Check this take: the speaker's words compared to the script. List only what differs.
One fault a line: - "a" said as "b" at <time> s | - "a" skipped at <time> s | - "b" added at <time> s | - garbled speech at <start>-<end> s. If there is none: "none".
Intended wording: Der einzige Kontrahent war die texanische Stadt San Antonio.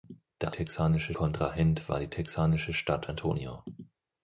- "einzige" said as "texanische" at 0.5 s
- "San" skipped at 3.1 s